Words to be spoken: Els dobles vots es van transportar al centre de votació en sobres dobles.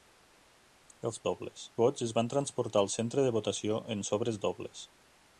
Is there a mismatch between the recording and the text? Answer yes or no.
no